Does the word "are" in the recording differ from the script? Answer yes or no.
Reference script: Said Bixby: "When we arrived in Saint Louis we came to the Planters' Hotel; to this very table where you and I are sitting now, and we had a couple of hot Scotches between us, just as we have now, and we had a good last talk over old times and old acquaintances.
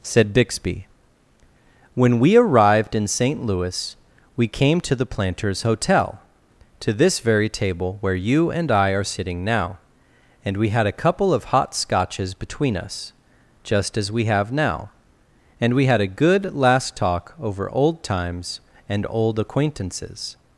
no